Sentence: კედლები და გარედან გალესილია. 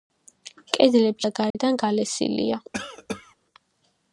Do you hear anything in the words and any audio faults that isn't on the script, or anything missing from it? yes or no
yes